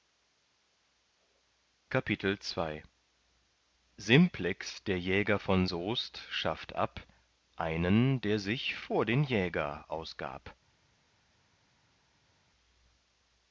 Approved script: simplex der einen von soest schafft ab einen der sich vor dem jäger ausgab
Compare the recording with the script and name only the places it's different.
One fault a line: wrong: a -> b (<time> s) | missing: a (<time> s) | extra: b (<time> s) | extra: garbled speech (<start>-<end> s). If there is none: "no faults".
wrong: einen -> jäger (5.0 s)
wrong: dem -> den (9.1 s)